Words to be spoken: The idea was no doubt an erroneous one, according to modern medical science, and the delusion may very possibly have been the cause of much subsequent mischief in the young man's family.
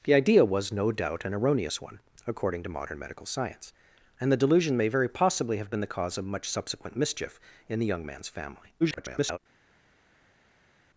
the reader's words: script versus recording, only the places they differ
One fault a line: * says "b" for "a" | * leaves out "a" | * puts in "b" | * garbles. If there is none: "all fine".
* garbles